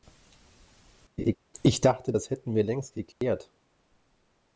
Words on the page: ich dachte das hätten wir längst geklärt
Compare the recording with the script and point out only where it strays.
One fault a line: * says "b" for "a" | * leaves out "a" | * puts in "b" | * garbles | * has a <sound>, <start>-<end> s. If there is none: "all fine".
* has a laugh, 1.2-1.4 s
* has a dropout, 3.1-3.2 s